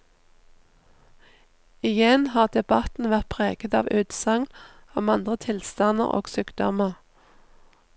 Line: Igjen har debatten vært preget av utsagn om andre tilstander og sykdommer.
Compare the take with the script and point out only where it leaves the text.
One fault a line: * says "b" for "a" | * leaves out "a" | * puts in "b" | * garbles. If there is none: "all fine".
all fine